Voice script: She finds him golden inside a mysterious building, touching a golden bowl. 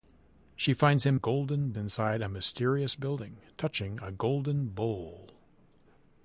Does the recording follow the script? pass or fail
pass